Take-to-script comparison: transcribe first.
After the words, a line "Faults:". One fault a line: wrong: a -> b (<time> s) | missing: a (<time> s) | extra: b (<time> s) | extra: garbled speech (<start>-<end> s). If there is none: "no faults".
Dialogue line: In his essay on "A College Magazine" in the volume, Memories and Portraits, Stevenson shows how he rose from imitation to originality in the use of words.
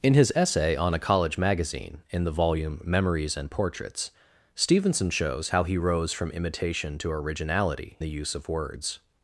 In his essay on "A College Magazine" in the volume, Memories and Portraits, Stevenson shows how he rose from imitation to originality the use of words.
Faults:
missing: in (8.0 s)